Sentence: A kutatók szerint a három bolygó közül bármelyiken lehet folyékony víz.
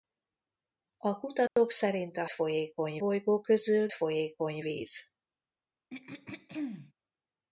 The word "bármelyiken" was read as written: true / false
false